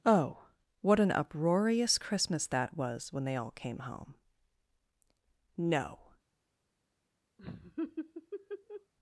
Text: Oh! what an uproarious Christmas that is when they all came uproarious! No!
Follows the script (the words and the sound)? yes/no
no